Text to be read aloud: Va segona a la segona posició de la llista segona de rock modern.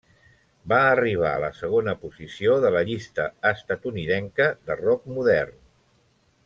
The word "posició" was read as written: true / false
true